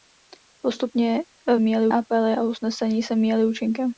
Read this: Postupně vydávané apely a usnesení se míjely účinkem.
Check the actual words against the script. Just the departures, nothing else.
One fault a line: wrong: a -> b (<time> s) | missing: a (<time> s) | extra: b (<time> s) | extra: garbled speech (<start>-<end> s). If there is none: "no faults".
wrong: vydávané -> míjely (1.6 s)